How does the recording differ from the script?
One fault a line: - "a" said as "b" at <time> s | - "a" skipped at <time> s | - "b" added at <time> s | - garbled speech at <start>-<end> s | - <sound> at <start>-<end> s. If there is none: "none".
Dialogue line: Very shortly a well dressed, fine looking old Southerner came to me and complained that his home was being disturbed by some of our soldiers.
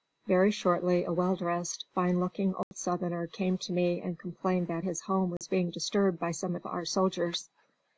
- dropout at 2.6-2.7 s
- dropout at 5.4-5.4 s